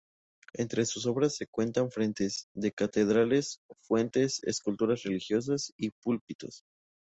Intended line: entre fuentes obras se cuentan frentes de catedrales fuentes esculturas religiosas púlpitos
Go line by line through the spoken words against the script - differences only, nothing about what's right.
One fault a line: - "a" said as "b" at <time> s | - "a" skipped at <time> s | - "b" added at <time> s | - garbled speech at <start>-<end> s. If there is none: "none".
- "fuentes" said as "sus" at 0.8 s
- "y" added at 5.8 s